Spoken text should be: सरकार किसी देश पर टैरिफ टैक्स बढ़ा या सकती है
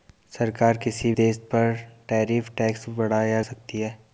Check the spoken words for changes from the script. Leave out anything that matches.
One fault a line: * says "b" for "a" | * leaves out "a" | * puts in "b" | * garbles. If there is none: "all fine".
all fine